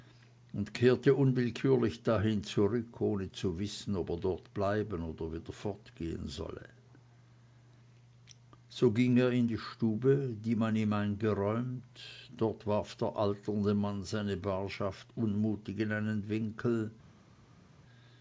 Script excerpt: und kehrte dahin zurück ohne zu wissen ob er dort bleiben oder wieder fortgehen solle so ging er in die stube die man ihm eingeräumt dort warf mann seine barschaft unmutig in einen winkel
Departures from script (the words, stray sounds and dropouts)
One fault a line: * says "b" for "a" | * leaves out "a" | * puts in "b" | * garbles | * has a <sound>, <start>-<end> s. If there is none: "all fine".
* puts in "unwillkürlich"
* puts in "der alternde"